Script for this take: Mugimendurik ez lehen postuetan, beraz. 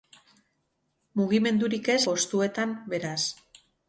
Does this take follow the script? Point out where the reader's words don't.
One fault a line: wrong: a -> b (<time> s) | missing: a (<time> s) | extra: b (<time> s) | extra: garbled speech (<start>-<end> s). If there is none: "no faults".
missing: lehen (2.0 s)